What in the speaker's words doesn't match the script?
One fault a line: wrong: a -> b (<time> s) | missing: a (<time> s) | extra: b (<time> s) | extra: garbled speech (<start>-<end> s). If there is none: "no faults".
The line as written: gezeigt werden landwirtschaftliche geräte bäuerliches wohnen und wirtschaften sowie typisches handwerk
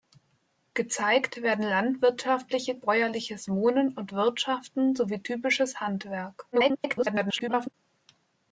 missing: geräte (2.8 s)
extra: garbled speech (6.5-7.7 s)